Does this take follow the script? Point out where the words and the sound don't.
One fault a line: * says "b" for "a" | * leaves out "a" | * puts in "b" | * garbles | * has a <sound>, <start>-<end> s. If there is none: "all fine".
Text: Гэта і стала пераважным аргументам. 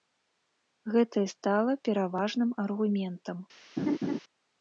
* has a laugh, 3.8-4.2 s